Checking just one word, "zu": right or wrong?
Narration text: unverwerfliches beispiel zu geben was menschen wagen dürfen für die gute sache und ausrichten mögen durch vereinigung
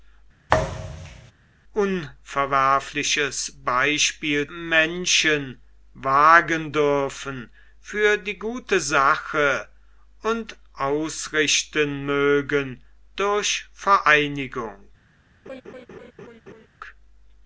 wrong